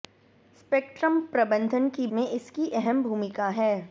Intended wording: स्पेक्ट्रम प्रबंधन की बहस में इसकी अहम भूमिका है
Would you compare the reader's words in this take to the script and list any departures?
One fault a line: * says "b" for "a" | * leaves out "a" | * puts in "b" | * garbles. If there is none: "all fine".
* leaves out "बहस"